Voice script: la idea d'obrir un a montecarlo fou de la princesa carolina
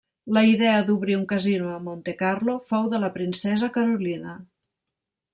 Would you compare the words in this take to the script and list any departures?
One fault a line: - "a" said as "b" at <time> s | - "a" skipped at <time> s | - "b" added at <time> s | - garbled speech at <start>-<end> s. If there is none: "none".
- "casino" added at 1.3 s